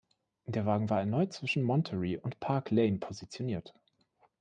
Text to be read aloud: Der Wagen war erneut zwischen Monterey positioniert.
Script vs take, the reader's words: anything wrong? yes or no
yes